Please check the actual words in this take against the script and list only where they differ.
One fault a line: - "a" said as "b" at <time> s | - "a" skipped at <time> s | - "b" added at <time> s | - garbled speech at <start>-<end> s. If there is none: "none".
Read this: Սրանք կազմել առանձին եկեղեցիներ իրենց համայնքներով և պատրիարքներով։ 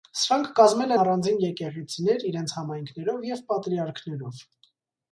none